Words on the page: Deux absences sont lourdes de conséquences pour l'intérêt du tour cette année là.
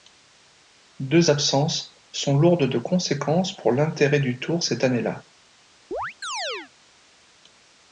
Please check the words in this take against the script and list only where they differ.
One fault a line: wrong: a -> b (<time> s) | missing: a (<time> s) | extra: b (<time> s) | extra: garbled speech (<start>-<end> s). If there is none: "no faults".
no faults